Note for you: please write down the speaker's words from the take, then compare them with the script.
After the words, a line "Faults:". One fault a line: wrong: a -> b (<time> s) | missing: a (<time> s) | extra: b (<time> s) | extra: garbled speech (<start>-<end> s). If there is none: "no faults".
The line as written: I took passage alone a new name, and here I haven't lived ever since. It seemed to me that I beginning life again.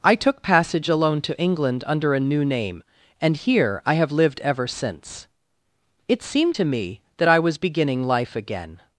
I took passage alone to England under a new name, and here I have lived ever since. It seemed to me that I was beginning life again.
Faults:
extra: to England under (1.2 s)
wrong: haven't -> have (3.9 s)
extra: was (7.4 s)